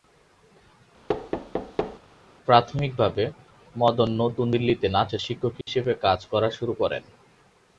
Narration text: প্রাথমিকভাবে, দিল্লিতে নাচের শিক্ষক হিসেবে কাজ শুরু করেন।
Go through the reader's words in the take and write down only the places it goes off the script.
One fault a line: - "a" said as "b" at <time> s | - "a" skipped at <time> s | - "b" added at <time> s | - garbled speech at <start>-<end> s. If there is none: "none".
- "মদন নতুন" added at 3.7 s
- "করা" added at 6.3 s